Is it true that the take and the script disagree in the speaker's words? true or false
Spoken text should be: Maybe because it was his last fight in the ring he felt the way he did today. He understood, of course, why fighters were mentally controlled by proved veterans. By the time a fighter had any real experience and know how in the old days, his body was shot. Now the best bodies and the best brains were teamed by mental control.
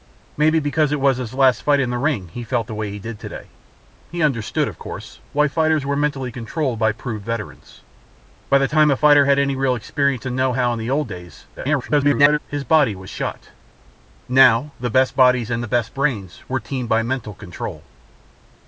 true